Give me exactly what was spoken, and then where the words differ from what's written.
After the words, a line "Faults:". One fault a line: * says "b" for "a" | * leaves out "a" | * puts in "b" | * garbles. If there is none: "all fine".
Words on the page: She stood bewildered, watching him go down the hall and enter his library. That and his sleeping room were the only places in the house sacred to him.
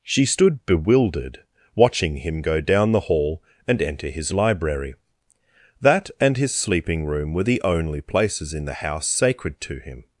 She stood bewildered, watching him go down the hall and enter his library. That and his sleeping room were the only places in the house sacred to him.
Faults:
all fine